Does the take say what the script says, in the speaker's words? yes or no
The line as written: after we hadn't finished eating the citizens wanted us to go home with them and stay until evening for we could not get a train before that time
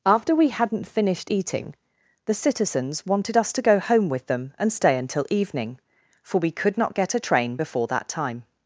yes